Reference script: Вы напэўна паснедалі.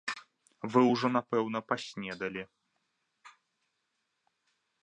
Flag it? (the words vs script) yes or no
yes